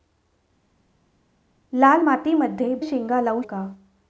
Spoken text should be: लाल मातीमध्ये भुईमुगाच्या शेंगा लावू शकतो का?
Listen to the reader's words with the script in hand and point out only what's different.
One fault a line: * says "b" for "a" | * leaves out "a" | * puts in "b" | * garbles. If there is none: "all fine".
* leaves out "भुईमुगाच्या"
* leaves out "शकतो"